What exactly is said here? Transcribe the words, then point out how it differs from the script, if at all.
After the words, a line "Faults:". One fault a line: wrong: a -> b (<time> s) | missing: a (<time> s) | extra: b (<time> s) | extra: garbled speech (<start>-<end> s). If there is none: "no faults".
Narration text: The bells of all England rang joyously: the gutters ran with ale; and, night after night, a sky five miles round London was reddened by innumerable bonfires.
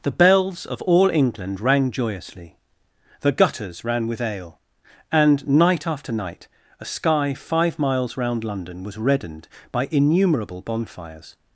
The bells of all England rang joyously: the gutters ran with ale; and, night after night, a sky five miles round London was reddened by innumerable bonfires.
Faults:
no faults